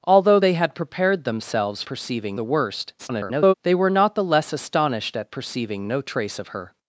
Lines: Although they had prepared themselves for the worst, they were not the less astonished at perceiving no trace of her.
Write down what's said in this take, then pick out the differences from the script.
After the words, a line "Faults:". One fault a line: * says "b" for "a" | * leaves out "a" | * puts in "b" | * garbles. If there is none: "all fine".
Although they had prepared themselves perceiving the worst, [garbled] they were not the less astonished at perceiving no trace of her.
Faults:
* says "perceiving" for "for"
* garbles